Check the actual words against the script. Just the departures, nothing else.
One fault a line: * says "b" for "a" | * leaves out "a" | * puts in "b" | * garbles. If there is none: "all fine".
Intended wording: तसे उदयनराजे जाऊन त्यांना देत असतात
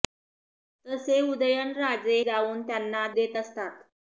all fine